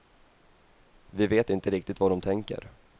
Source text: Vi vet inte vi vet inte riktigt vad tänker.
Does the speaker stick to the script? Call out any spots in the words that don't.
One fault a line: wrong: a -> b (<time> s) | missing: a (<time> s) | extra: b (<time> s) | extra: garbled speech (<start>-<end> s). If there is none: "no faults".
missing: vi vet inte (1.7 s)
extra: de (2.1 s)